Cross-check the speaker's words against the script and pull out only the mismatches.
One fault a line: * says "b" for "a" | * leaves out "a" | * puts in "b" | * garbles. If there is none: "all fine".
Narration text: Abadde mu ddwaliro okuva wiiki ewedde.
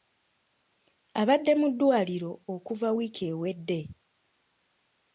all fine